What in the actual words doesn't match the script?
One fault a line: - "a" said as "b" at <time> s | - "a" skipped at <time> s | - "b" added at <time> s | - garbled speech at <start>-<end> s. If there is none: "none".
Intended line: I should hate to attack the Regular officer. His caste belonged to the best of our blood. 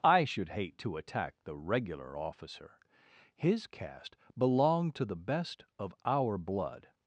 none